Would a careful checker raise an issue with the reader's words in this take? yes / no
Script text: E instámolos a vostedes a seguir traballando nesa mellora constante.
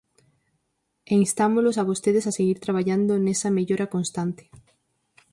no